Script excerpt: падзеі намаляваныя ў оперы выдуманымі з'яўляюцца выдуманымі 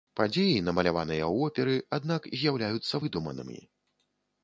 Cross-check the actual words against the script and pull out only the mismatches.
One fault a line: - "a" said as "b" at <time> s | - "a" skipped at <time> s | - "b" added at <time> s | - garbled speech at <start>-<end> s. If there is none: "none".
- "выдуманымі" said as "аднак" at 2.0 s